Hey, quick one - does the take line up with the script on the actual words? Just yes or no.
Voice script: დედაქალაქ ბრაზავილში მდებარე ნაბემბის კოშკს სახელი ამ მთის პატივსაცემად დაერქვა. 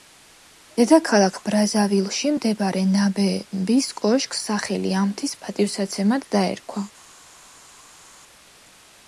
yes